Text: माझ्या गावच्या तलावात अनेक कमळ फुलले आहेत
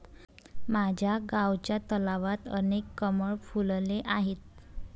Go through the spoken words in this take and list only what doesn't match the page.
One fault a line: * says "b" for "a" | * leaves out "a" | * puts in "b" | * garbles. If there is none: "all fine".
all fine